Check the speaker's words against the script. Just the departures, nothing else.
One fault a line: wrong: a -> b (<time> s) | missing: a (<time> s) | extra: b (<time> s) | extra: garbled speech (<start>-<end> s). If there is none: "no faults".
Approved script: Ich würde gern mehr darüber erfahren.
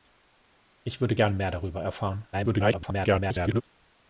extra: garbled speech (2.3-3.6 s)